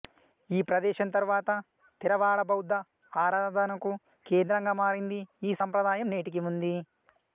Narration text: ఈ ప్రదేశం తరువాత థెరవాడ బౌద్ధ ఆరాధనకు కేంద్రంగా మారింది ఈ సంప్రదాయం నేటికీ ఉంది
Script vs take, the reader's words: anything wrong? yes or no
no